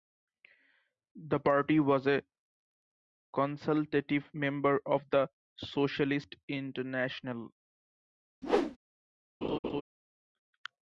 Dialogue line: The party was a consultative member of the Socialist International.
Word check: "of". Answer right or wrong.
right